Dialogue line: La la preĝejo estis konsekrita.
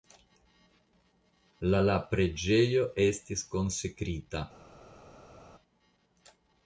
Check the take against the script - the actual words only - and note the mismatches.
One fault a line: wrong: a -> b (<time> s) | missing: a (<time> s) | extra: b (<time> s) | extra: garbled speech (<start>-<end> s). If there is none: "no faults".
no faults